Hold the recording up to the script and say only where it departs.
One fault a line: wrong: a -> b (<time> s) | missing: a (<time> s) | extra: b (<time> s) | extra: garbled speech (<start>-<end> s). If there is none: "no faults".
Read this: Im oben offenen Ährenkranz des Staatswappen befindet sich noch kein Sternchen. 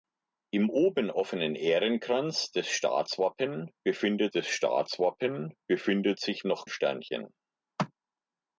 extra: des Staatswappen befindet (4.3 s)
missing: kein (6.7 s)